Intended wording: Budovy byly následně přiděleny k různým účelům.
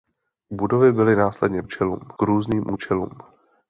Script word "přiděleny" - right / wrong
wrong